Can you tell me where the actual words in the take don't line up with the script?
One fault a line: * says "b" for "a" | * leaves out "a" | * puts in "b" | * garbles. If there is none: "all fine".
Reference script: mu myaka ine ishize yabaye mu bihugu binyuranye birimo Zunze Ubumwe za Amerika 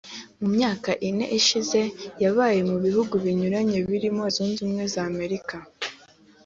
all fine